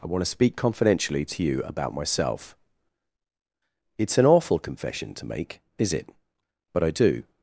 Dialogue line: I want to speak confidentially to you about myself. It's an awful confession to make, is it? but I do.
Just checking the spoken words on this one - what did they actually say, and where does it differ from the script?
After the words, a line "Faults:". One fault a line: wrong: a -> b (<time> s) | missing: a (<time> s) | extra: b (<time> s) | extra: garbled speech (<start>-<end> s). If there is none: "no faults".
I want to speak confidentially to you about myself. It's an awful confession to make, is it? but I do.
Faults:
no faults